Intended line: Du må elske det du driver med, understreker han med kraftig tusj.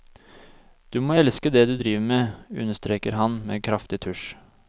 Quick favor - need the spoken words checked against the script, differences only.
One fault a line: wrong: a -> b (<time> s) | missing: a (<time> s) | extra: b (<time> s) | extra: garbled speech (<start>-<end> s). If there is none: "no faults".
no faults